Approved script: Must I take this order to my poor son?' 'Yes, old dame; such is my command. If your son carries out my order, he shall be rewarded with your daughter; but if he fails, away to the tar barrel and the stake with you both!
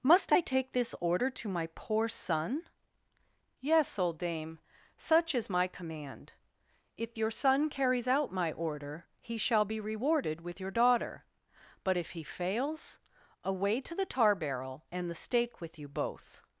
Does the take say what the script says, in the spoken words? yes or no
yes